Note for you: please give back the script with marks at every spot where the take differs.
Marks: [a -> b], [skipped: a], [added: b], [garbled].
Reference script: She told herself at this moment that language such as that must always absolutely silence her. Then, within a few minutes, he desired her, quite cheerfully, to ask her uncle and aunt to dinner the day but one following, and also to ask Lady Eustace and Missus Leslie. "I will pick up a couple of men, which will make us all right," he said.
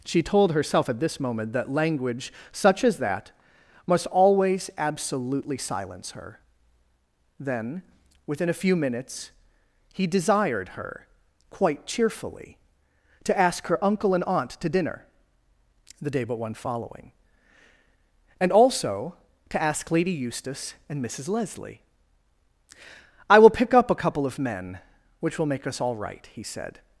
She told herself at this moment that language such as that must always absolutely silence her. Then, within a few minutes, he desired her, quite cheerfully, to ask her uncle and aunt to dinner the day but one following, and also to ask Lady Eustace and Missus Leslie. "I will pick up a couple of men, which will make us all right," he said.